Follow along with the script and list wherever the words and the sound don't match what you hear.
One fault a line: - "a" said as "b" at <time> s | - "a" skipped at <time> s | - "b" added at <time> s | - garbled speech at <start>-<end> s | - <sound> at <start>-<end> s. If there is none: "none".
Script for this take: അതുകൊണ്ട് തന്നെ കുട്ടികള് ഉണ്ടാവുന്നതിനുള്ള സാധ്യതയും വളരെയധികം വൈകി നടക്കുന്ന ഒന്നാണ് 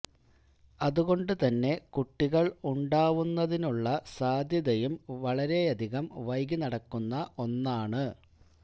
none